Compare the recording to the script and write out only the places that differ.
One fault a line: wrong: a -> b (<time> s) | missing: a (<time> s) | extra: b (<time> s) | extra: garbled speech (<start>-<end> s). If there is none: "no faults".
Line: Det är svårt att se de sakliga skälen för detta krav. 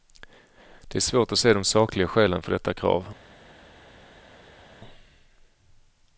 no faults